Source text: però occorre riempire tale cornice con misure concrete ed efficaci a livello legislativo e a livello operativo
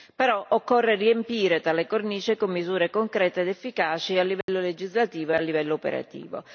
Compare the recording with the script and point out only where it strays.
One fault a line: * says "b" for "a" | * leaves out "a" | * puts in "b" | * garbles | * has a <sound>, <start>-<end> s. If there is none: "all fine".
* has a dropout, 4.4-4.5 s